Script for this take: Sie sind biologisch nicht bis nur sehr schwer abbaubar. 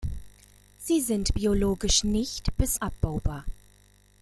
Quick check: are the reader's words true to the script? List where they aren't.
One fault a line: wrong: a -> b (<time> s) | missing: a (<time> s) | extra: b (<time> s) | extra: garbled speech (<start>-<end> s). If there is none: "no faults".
missing: nur sehr schwer (2.8 s)